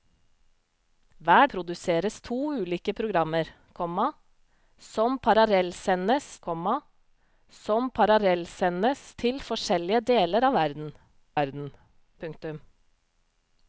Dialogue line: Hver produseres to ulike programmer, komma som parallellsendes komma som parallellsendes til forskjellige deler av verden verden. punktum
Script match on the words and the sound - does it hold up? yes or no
yes